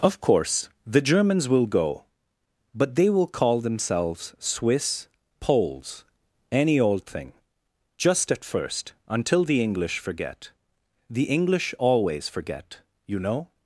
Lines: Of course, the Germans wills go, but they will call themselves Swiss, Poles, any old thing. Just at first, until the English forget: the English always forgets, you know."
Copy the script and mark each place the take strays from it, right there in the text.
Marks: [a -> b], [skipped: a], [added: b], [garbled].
Of course, the Germans [wills -> will] go, but they will call themselves Swiss, Poles, any old thing. Just at first, until the English forget: the English always [forgets, -> forget] you know."